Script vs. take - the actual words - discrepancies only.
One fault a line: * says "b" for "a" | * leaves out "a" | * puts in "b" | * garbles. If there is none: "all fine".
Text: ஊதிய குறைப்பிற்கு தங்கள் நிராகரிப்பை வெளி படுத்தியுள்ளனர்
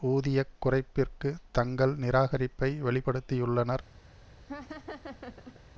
all fine